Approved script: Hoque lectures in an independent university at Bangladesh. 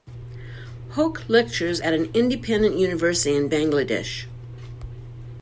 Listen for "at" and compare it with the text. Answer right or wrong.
wrong